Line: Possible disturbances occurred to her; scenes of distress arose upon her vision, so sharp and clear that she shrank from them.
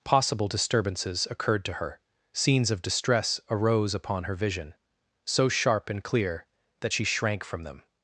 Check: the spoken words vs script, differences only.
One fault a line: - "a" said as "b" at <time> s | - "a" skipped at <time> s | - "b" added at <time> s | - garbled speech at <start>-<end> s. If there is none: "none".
none